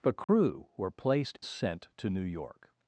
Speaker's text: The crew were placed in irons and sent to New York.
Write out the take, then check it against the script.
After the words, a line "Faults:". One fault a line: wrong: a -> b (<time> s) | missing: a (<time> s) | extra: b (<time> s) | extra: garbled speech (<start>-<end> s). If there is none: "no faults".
The crew were placed sent to New York.
Faults:
missing: in irons and (1.4 s)